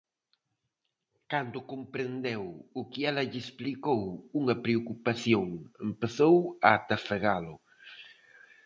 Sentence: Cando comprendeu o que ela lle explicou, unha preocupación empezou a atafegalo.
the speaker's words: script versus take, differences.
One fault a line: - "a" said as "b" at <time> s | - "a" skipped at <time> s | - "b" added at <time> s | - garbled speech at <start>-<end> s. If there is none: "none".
none